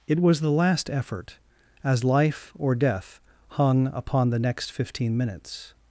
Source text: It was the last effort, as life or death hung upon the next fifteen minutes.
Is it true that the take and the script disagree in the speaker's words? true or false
false